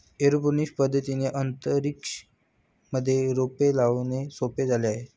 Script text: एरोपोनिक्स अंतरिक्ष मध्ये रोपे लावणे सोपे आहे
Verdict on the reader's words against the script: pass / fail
fail